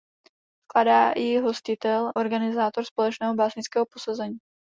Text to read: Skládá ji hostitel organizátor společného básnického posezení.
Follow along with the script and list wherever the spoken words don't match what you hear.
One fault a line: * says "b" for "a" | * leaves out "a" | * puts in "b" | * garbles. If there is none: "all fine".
all fine